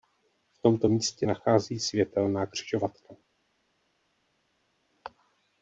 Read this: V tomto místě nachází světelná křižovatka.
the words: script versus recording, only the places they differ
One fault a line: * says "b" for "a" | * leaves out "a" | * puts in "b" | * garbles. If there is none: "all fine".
all fine